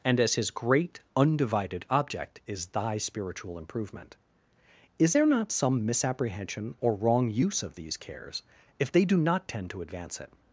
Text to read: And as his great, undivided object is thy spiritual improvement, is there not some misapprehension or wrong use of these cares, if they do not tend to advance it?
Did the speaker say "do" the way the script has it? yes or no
yes